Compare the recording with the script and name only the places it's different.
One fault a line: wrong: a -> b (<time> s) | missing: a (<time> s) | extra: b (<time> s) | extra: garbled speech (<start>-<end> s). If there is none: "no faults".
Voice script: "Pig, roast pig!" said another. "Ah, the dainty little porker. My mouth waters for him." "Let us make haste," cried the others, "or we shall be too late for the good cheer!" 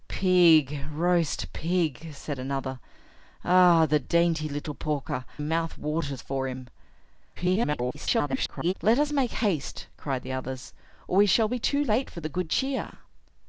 missing: My (5.2 s)
extra: garbled speech (7.4-8.7 s)